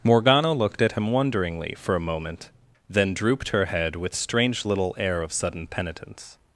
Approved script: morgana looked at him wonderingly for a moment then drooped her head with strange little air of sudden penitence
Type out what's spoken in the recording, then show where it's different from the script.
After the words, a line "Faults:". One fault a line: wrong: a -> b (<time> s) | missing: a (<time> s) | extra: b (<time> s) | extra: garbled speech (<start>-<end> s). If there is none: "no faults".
morgana looked at him wonderingly for a moment then drooped her head with strange little air of sudden penitence
Faults:
no faults